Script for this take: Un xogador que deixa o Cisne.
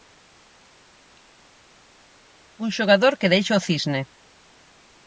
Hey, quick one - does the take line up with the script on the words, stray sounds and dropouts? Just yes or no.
yes